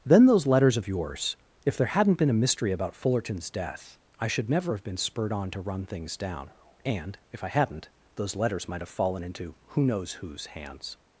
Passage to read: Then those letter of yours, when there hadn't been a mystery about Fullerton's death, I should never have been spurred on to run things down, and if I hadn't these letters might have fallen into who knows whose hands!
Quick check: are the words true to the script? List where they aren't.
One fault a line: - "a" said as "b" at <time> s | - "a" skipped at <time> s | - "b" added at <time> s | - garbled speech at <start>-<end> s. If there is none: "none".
- "letter" said as "letters" at 0.5 s
- "when" said as "if" at 1.6 s
- "these" said as "those" at 8.2 s